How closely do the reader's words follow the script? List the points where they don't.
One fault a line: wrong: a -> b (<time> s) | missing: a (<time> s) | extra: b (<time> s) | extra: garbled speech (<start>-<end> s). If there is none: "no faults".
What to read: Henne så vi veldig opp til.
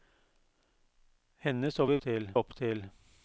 wrong: veldig -> til (2.0 s)